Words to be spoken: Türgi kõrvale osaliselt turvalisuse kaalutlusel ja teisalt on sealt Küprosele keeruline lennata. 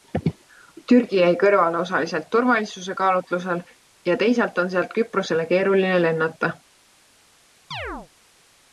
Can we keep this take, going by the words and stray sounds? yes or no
no